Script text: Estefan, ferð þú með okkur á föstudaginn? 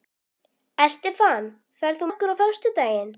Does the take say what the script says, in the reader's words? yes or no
no